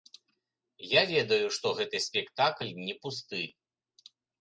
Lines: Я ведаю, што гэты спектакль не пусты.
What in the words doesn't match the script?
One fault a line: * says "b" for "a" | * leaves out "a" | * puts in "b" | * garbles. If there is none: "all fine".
all fine